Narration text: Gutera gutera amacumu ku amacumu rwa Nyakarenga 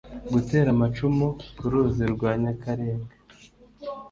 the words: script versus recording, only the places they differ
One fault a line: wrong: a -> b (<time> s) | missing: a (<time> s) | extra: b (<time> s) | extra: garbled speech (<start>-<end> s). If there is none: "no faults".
missing: gutera (0.7 s)
wrong: amacumu -> ruzi (1.7 s)